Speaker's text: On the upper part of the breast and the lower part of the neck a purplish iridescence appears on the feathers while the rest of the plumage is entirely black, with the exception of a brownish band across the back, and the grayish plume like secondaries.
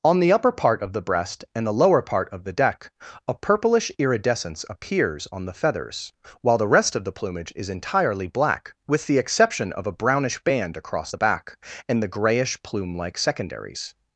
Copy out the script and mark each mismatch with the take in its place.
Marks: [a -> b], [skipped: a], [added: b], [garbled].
On the upper part of the breast and the lower part of the [neck -> deck] a purplish iridescence appears on the feathers while the rest of the plumage is entirely black, with the exception of a brownish band across the back, and the grayish plume like secondaries.